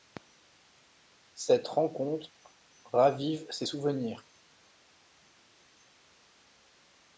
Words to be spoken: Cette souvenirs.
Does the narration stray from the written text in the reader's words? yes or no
yes